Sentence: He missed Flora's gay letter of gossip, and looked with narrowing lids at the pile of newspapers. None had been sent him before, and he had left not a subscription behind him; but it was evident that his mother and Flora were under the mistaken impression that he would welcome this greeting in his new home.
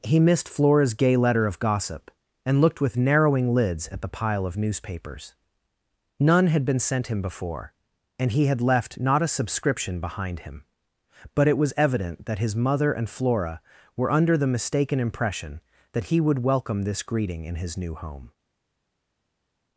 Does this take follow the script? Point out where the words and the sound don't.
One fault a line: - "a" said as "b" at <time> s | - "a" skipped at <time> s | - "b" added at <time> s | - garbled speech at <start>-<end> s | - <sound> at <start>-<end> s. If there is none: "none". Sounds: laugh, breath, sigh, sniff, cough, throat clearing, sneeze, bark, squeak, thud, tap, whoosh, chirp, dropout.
none